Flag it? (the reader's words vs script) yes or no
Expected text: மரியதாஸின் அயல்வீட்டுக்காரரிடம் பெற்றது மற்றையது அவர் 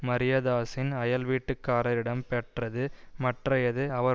no